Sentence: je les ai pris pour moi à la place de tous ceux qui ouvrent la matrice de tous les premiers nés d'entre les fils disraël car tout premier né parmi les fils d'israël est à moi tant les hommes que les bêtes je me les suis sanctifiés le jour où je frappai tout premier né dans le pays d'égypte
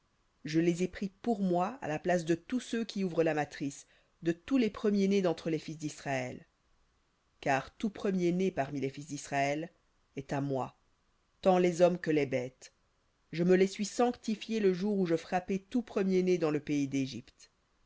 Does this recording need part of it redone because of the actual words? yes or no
no